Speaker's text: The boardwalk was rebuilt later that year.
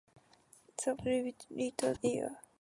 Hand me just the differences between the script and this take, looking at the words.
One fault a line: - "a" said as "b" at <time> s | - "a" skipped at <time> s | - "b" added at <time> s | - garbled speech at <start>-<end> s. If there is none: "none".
- "boardwalk was" skipped at 0.9 s
- "that" skipped at 1.9 s